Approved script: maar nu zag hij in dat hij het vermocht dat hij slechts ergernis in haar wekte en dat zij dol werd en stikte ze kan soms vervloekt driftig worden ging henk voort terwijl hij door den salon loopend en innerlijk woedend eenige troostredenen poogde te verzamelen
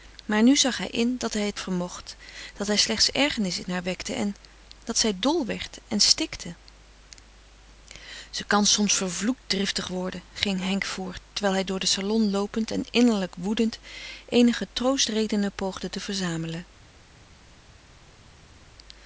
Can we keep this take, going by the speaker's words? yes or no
yes